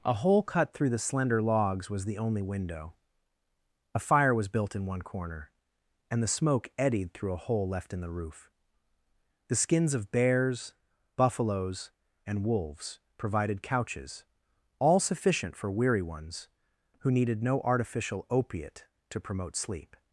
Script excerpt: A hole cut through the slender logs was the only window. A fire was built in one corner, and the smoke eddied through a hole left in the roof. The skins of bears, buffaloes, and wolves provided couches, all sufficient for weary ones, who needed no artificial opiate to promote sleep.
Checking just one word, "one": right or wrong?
right